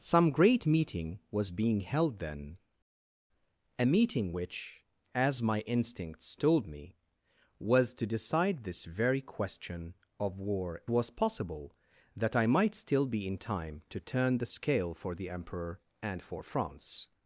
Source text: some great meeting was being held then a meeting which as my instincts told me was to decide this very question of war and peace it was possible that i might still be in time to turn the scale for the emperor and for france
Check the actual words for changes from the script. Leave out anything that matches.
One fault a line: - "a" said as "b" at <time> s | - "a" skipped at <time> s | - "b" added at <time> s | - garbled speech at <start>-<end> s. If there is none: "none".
- "and peace it" skipped at 10.8 s